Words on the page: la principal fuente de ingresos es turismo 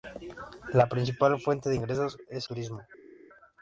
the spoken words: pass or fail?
pass